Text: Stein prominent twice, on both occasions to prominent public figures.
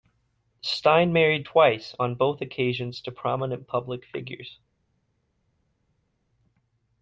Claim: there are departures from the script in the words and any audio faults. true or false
true